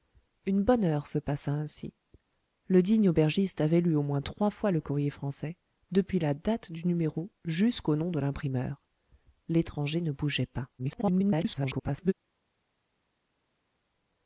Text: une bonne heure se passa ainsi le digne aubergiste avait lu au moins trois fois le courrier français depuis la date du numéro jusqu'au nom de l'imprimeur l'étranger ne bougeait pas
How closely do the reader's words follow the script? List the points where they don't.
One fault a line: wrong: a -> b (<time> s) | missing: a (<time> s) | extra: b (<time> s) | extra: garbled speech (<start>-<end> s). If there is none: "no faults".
extra: garbled speech (10.8-12.1 s)